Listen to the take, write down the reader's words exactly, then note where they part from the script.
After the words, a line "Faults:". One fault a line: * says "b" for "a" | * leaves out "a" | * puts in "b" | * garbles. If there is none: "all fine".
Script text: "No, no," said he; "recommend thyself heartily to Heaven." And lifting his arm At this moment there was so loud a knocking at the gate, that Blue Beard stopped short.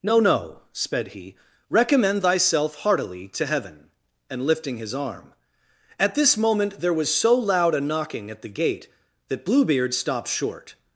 "No, no," sped he; "recommend thyself heartily to Heaven." And lifting his arm At this moment there was so loud a knocking at the gate, that Blue Beard stopped short.
Faults:
* says "sped" for "said"